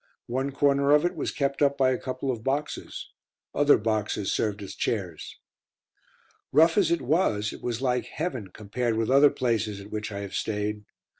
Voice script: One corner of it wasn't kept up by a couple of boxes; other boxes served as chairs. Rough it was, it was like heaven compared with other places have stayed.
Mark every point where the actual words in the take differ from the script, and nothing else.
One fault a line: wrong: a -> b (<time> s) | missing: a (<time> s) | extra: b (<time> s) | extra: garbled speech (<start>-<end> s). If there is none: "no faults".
wrong: wasn't -> was (1.1 s)
extra: as (6.8 s)
extra: at which I (9.8 s)